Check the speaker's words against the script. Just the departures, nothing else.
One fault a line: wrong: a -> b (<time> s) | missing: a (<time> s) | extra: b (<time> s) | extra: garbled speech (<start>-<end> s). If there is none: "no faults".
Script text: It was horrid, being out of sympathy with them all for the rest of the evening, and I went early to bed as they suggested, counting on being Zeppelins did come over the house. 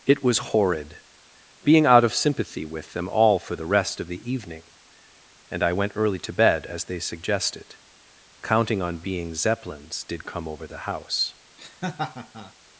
no faults